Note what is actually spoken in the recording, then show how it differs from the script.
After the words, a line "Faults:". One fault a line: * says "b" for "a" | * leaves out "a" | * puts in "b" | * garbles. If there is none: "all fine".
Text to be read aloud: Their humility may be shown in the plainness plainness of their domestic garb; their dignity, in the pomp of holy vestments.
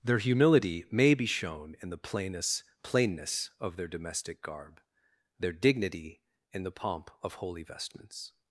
Their humility may be shown in the plainness plainness of their domestic garb; their dignity, in the pomp of holy vestments.
Faults:
all fine